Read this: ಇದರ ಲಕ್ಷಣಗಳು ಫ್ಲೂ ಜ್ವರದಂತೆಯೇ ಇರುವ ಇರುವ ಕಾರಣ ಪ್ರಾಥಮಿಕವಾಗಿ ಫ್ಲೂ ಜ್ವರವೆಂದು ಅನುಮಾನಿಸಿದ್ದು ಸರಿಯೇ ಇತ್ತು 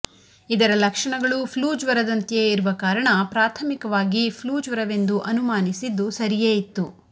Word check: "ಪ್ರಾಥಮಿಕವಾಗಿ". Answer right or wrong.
right